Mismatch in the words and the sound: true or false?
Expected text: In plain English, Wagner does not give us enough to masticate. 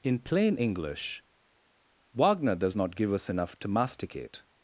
false